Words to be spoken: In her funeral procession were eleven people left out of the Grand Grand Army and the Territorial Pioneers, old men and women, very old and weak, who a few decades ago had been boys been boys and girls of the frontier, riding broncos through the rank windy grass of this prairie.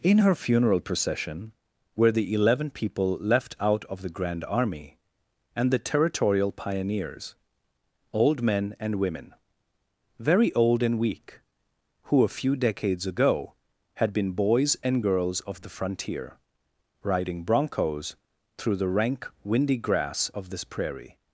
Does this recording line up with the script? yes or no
no